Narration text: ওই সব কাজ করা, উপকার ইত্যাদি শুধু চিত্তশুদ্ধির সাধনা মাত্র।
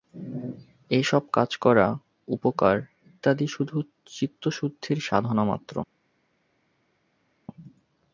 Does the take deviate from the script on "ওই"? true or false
true